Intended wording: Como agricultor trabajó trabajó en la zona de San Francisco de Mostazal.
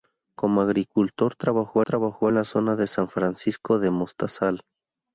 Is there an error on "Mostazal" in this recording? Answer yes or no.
no